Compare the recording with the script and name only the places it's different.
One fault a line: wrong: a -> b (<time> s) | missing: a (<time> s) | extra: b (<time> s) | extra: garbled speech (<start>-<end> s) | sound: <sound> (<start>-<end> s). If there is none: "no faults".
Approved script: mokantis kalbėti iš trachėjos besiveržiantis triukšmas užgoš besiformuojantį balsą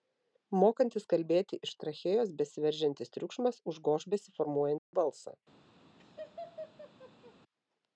sound: dropout (4.8-4.9 s)
sound: laugh (6.0-7.3 s)